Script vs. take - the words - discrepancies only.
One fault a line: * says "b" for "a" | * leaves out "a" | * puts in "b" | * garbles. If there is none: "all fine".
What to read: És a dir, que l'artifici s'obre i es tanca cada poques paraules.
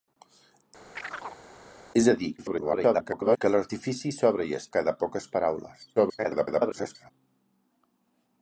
* garbles
* leaves out "tanca"
* garbles